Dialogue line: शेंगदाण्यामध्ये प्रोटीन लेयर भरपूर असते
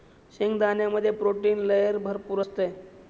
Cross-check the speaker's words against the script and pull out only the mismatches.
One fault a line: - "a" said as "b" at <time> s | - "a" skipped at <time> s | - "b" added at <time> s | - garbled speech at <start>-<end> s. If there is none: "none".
none